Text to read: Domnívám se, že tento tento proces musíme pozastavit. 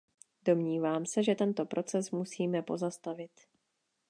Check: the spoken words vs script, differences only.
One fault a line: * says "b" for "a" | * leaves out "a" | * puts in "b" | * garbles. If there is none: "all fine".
* leaves out "tento"